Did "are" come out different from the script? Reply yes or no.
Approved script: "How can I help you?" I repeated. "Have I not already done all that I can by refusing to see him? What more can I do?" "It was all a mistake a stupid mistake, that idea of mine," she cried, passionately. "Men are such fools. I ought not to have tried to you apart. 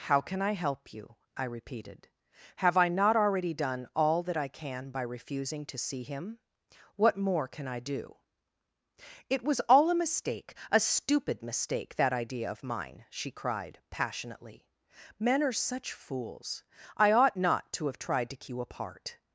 no